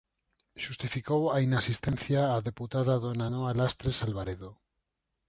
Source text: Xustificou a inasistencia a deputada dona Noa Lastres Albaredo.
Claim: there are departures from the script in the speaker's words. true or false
false